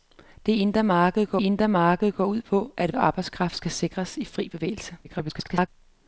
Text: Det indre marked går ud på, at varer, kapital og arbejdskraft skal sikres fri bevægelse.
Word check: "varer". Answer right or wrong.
wrong